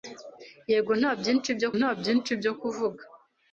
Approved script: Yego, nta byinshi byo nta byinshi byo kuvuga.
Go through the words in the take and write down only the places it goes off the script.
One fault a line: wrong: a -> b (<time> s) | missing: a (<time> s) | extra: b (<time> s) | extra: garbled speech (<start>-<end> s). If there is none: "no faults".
no faults